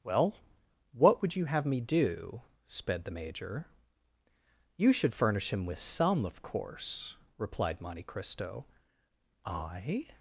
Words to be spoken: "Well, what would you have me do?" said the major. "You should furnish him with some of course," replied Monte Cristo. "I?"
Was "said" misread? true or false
true